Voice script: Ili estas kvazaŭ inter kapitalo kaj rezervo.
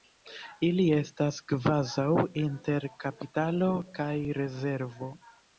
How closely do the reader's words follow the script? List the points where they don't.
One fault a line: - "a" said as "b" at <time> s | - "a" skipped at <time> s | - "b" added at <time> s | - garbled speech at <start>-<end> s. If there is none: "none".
none